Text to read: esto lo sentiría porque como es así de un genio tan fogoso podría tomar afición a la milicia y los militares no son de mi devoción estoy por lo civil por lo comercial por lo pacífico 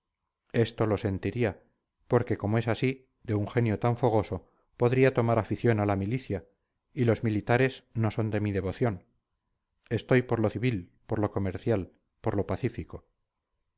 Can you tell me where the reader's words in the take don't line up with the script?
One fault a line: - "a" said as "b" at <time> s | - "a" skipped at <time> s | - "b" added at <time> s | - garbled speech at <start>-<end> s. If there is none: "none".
none